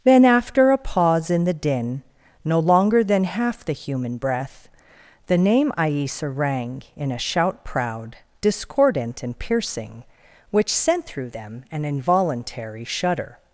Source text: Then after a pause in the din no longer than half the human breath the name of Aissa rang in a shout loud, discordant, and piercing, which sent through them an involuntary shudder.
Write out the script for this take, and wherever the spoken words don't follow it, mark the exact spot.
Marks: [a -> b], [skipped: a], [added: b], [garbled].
Then after a pause in the din no longer than half the human breath the name [skipped: of] Aissa rang in a shout [loud, -> proud] discordant, and piercing, which sent through them an involuntary shudder.